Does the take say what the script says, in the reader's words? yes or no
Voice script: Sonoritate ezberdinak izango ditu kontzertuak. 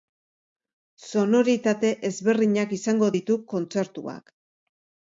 yes